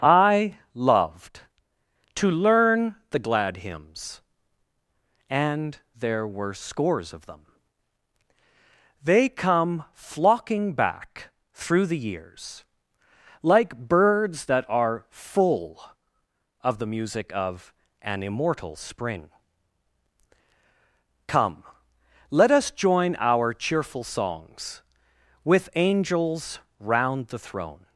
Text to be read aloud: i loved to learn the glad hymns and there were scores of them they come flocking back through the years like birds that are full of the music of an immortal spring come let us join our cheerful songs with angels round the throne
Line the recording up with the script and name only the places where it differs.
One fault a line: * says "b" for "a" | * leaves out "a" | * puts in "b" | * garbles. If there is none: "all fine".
all fine